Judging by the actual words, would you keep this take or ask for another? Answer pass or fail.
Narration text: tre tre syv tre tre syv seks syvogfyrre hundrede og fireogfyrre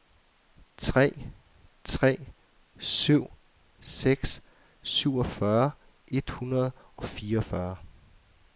fail